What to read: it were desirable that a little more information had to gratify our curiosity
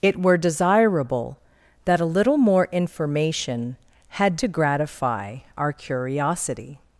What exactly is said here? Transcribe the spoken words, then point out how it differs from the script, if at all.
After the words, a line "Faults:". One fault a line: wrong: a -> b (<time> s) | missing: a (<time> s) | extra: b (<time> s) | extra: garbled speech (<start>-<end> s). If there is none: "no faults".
it were desirable that a little more information had to gratify our curiosity
Faults:
no faults